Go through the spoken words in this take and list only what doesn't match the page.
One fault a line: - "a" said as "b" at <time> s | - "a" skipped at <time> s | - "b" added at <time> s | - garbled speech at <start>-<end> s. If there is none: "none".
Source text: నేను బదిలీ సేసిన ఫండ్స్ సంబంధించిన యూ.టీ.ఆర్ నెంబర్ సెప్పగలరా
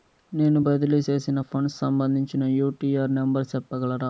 none